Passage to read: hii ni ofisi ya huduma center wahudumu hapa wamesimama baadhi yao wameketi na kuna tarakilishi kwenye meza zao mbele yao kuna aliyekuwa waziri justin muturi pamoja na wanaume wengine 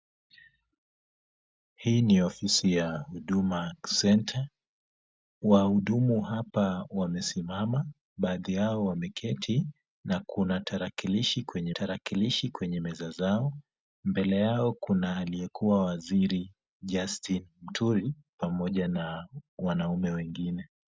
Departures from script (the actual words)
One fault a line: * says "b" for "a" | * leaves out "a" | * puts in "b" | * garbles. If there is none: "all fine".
* puts in "tarakilishi kwenye"